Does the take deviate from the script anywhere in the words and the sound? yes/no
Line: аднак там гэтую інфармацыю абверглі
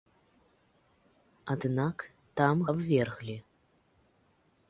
yes